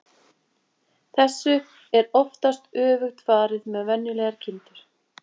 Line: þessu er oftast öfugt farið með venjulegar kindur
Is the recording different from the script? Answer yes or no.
no